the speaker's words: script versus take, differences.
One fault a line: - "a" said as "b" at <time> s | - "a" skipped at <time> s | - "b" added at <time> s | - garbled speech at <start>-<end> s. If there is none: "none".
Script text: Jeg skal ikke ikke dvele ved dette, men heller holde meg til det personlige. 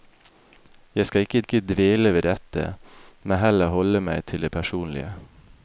none